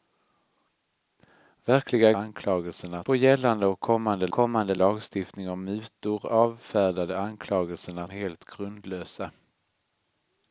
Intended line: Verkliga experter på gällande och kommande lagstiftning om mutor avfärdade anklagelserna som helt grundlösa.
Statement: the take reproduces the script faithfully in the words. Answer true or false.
false